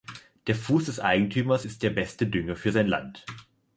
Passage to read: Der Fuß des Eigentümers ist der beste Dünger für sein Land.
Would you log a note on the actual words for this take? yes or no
no